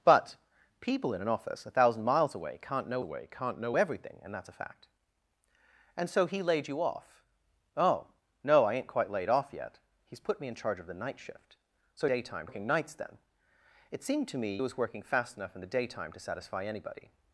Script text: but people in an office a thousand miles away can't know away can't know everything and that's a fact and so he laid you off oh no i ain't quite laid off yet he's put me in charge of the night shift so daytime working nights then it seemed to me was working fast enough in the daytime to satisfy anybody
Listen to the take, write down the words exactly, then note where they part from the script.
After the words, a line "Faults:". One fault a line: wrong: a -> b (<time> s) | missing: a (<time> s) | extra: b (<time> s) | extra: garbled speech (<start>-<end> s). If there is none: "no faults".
but people in an office a thousand miles away can't know away can't know everything and that's a fact and so he laid you off oh no i ain't quite laid off yet he's put me in charge of the night shift so daytime working nights then it seemed to me was working fast enough in the daytime to satisfy anybody
Faults:
no faults